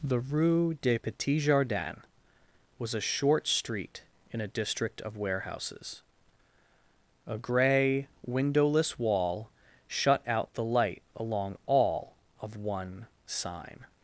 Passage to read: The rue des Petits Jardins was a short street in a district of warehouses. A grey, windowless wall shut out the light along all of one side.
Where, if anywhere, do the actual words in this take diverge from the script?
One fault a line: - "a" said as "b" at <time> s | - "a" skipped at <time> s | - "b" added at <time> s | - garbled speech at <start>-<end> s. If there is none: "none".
- "side" said as "sign" at 13.2 s